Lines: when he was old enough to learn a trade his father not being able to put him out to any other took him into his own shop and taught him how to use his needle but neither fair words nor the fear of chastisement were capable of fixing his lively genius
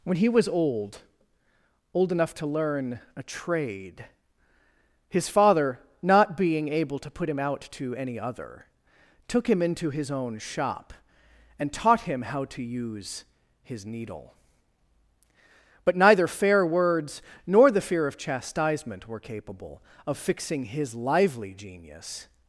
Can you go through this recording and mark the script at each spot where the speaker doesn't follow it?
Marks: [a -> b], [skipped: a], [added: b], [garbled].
when he was old [added: old] enough to learn a trade his father not being able to put him out to any other took him into his own shop and taught him how to use his needle but neither fair words nor the fear of chastisement were capable of fixing his lively genius